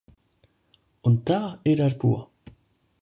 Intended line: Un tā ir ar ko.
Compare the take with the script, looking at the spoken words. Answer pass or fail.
pass